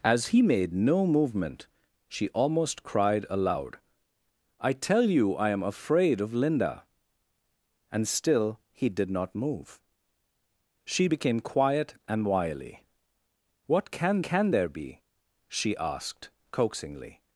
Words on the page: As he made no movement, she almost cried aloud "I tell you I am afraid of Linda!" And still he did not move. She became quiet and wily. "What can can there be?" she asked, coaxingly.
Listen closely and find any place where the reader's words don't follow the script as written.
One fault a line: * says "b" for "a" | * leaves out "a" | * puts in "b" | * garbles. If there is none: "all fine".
all fine